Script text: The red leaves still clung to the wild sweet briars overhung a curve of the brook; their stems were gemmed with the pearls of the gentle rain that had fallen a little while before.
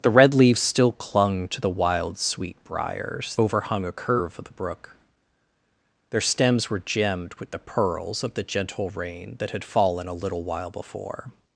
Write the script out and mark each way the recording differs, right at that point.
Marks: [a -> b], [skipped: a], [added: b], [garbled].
The red leaves still clung to the wild sweet briars overhung a curve of the brook; their stems were gemmed with the pearls of the gentle rain that had fallen a little while before.